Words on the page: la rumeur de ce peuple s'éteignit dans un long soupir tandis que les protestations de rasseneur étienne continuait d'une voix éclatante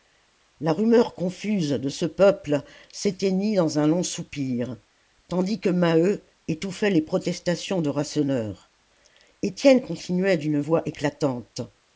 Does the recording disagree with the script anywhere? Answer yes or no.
yes